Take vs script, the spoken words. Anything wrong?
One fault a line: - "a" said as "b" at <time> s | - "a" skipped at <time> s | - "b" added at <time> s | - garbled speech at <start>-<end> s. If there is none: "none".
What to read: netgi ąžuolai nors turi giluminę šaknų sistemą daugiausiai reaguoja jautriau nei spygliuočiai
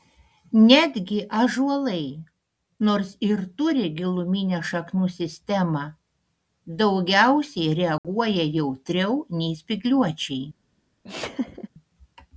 - "ir" added at 3.3 s